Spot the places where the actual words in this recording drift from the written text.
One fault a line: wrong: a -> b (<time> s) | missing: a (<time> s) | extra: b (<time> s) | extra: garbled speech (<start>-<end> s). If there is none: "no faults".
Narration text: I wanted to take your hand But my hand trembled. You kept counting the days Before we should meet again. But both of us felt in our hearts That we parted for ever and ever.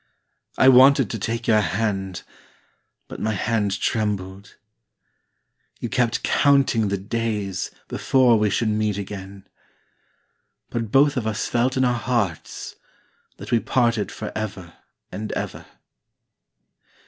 no faults